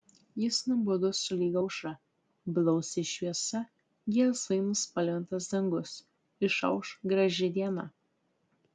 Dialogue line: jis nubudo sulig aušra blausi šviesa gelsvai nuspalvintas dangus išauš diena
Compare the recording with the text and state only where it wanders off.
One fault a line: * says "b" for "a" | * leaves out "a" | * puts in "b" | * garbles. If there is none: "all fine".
* puts in "graži"